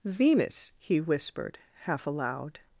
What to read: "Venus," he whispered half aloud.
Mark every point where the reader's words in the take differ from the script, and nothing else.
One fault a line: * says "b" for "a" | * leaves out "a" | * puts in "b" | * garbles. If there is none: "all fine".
all fine